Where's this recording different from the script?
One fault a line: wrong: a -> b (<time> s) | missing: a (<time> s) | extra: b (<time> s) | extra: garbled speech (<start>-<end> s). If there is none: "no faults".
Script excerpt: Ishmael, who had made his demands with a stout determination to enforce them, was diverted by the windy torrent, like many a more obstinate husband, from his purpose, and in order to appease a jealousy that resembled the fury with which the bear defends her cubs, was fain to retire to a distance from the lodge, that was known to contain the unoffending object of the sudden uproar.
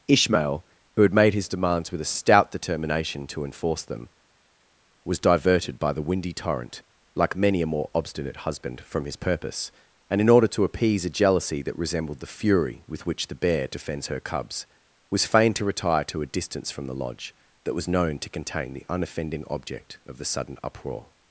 no faults